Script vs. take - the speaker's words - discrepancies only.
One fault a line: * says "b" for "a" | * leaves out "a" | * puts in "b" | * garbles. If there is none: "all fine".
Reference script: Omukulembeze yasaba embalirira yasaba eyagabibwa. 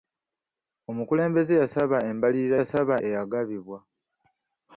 all fine